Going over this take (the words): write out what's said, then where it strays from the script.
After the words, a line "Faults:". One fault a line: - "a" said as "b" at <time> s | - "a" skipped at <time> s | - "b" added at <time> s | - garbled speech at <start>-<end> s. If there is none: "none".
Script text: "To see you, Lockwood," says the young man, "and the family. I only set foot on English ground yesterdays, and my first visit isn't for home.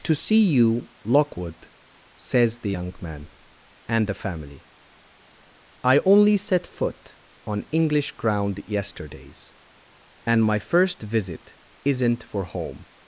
"To see you, Lockwood," says the young man, "and the family. I only set foot on English ground yesterdays, and my first visit isn't for home.
Faults:
none